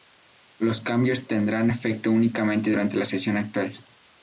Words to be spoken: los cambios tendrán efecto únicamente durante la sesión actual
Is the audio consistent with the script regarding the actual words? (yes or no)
yes